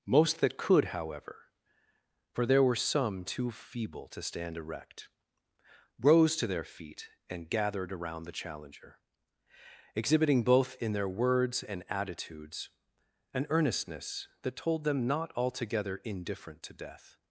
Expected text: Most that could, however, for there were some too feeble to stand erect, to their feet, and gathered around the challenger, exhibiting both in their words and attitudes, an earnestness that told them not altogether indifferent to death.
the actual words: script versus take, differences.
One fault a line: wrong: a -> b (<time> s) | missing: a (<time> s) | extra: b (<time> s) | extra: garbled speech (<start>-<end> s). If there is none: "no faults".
extra: rose (6.0 s)